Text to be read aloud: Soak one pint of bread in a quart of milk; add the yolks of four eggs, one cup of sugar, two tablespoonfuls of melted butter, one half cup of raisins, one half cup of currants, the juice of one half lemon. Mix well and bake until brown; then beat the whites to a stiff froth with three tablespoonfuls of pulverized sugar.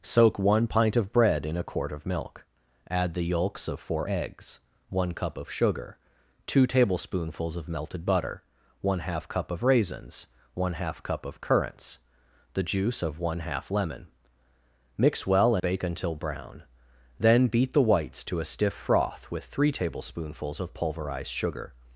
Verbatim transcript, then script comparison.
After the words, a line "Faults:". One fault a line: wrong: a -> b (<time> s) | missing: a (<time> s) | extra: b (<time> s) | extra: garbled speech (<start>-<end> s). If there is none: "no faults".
Soak one pint of bread in a quart of milk; add the yolks of four eggs, one cup of sugar, two tablespoonfuls of melted butter, one half cup of raisins, one half cup of currants, the juice of one half lemon. Mix well bake until brown; then beat the whites to a stiff froth with three tablespoonfuls of pulverized sugar.
Faults:
missing: and (15.6 s)